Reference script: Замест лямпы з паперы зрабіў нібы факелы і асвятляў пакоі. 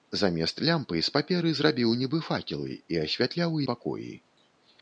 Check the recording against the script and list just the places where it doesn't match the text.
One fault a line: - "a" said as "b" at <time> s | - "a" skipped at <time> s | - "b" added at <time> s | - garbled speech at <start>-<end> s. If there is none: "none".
none